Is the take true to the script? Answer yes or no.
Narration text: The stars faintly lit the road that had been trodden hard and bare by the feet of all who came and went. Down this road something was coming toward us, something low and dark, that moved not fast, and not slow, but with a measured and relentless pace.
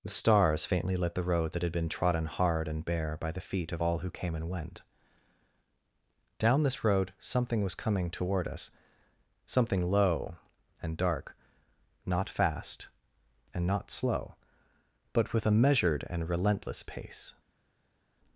no